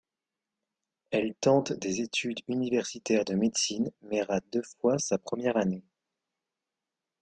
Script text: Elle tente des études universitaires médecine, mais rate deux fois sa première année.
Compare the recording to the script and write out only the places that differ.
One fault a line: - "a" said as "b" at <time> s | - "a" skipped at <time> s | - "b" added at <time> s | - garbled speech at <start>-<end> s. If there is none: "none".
- "de" added at 3.2 s